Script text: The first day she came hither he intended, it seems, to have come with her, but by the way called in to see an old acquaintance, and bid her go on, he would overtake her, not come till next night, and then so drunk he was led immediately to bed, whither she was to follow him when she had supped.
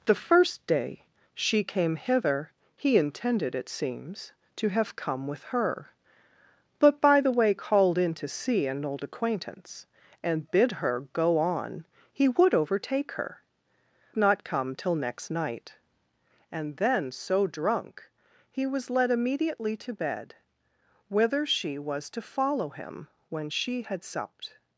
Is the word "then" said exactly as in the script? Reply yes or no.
yes